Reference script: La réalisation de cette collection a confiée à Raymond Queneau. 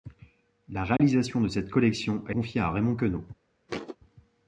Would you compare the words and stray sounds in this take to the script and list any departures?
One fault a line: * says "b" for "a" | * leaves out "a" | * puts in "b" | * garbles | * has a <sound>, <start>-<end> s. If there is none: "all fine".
* has a dropout, 1.0-1.0 s
* has a thud, 3.7-4.0 s